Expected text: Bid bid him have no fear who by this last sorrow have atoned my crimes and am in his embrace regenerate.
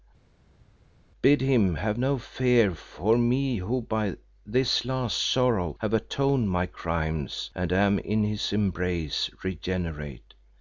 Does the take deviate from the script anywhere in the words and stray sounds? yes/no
yes